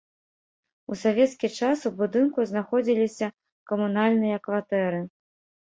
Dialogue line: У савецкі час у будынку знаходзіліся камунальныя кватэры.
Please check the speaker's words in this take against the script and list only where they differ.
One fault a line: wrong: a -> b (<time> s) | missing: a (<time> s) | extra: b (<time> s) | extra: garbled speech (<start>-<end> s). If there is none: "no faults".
no faults